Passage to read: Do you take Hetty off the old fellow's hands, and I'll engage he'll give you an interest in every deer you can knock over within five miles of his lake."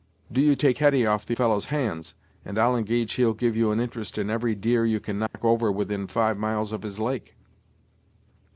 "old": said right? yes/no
no